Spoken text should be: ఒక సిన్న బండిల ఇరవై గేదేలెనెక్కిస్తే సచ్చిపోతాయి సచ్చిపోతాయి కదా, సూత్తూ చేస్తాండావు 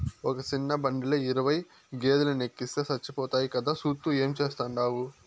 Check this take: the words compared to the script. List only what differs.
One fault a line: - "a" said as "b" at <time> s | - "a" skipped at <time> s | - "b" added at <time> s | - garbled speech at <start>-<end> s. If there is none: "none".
- "సచ్చిపోతాయి" skipped at 3.5 s
- "ఏం" added at 4.1 s